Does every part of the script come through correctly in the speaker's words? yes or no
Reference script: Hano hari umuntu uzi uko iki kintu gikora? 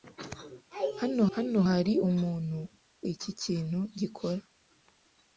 no